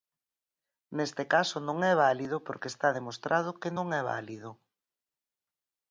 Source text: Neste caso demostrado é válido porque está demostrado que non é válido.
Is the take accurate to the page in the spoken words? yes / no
no